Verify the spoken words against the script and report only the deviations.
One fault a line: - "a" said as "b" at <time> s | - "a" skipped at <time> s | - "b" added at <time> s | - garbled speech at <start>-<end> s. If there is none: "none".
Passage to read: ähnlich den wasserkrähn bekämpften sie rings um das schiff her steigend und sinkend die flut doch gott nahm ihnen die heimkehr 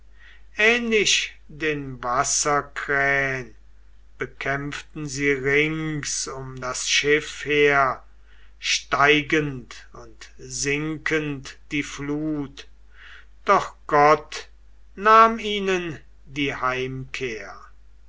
none